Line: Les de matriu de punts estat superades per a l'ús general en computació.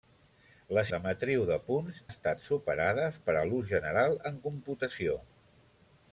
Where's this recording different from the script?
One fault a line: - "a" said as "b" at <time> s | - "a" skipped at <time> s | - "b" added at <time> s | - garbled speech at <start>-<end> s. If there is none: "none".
none